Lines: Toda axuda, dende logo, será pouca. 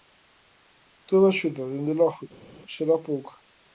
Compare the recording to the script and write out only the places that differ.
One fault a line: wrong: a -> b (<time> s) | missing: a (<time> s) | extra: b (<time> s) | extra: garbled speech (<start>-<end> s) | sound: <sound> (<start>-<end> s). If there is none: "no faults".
no faults